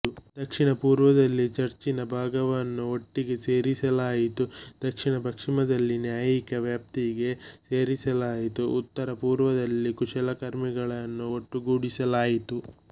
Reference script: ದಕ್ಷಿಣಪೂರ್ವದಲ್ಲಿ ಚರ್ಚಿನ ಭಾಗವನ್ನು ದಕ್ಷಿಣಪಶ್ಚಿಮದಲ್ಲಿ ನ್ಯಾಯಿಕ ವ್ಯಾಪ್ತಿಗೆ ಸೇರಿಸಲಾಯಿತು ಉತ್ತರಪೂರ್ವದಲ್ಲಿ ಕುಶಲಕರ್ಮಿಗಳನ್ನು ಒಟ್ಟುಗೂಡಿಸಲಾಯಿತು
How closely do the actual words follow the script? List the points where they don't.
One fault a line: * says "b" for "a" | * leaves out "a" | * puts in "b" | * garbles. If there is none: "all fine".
* puts in "ಒಟ್ಟಿಗೆ ಸೇರಿಸಲಾಯಿತು"